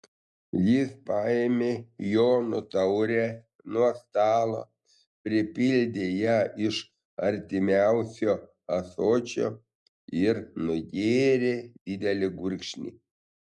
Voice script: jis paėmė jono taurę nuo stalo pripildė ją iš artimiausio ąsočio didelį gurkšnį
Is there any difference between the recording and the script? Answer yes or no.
yes